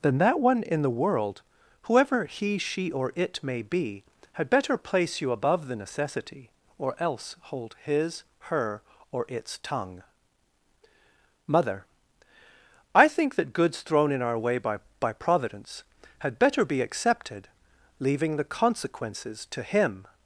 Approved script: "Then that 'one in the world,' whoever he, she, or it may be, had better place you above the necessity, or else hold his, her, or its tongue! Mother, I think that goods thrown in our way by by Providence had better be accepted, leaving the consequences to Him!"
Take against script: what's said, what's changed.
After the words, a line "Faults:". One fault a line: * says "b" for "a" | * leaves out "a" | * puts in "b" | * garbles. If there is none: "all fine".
"Then that 'one in the world,' whoever he, she, or it may be, had better place you above the necessity, or else hold his, her, or its tongue! Mother, I think that goods thrown in our way by by Providence had better be accepted, leaving the consequences to Him!"
Faults:
all fine